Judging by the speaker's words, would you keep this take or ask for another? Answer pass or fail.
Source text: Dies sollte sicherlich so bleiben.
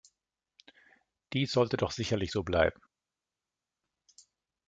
fail